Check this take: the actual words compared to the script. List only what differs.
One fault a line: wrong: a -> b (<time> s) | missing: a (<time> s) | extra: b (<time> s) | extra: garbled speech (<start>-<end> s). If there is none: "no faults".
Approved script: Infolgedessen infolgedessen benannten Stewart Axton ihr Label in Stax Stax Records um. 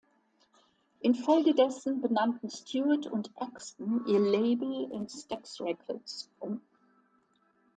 missing: infolgedessen (2.0 s)
extra: und (3.0 s)
missing: Stax (5.6 s)